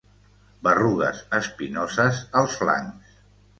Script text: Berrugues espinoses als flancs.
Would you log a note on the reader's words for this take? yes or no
no